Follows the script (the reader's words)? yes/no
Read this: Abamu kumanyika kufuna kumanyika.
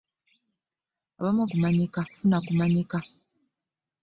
yes